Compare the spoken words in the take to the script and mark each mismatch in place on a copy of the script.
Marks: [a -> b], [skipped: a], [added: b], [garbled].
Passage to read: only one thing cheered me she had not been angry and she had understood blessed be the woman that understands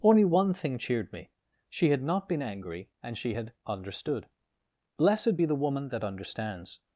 only one thing cheered me she had not been angry and she had understood blessed be the woman that understands